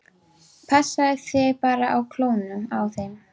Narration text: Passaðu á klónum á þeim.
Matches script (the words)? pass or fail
fail